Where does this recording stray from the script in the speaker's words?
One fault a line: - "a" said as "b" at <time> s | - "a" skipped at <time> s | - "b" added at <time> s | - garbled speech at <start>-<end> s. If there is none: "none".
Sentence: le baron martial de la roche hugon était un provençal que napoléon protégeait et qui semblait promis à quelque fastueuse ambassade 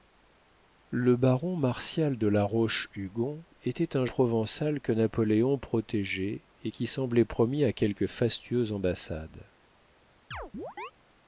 none